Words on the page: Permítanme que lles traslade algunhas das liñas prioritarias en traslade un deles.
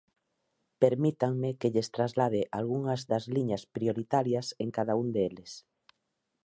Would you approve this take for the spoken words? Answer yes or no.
no